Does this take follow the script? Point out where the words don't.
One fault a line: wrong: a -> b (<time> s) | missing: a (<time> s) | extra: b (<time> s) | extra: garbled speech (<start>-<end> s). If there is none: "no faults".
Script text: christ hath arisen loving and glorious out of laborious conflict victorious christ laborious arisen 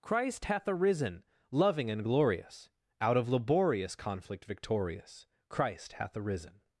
wrong: laborious -> hath (5.9 s)